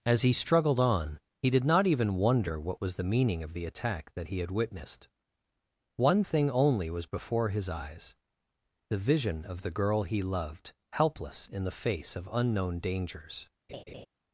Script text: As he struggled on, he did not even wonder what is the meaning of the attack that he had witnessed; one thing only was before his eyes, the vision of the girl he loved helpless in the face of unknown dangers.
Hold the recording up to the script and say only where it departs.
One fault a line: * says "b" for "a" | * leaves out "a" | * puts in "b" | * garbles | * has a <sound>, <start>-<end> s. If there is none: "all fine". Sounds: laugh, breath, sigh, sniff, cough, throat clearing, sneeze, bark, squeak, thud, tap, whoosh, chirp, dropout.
* says "was" for "is"
* has a laugh, 13.7-14.1 s